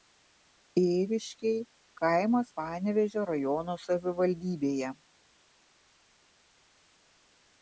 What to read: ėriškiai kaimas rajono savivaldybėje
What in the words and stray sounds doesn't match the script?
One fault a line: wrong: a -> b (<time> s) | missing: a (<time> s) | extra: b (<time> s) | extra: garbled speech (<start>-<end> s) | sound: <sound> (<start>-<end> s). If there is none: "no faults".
extra: panevėžio (2.6 s)